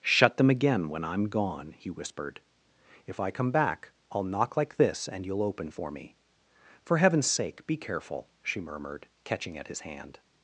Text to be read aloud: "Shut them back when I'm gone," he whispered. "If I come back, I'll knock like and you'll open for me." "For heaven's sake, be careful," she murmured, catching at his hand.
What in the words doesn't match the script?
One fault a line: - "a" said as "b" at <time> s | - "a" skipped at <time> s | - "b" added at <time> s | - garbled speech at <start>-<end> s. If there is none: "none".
- "back" said as "again" at 0.5 s
- "this" added at 4.8 s